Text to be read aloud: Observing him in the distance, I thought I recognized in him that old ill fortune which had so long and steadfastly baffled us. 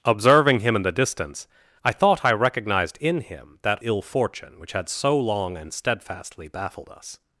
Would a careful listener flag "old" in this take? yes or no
yes